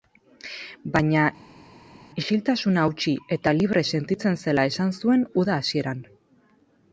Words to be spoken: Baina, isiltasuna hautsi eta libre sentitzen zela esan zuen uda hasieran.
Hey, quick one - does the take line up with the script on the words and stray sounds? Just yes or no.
yes